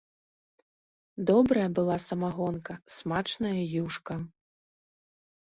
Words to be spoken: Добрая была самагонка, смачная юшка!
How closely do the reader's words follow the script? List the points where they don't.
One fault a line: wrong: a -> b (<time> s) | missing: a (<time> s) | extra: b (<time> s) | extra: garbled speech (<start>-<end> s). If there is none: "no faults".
no faults